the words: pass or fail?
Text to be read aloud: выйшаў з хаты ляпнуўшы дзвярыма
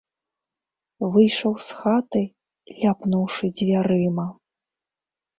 pass